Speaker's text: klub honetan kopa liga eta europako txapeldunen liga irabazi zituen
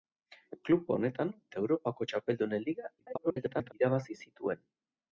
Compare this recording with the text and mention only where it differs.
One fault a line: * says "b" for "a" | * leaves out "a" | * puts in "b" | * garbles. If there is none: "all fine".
* leaves out "kopa liga"
* garbles